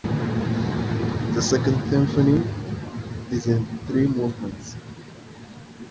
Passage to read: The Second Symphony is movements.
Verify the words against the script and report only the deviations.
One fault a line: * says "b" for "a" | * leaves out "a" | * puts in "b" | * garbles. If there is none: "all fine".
* puts in "in three"